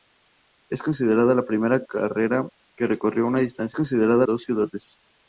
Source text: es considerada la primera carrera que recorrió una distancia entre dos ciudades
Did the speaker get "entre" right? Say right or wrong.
wrong